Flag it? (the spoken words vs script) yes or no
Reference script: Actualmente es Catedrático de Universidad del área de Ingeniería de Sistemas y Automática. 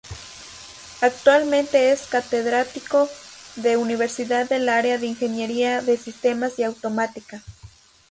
no